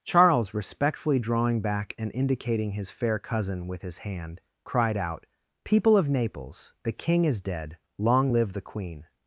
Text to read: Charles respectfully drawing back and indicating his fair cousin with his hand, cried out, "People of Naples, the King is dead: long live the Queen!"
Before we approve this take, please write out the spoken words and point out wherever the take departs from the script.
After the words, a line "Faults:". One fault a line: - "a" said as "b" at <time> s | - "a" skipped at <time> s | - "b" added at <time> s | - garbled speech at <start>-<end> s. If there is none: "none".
Charles respectfully drawing back and indicating his fair cousin with his hand, cried out, "People of Naples, the King is dead: long live the Queen!"
Faults:
none